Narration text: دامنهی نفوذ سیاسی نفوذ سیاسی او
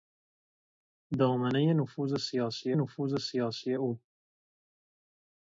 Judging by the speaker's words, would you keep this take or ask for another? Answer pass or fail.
pass